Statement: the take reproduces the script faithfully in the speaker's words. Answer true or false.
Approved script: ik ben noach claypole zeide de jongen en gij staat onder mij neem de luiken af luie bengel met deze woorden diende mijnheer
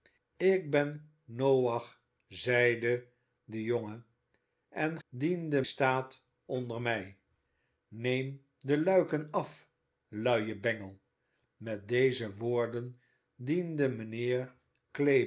false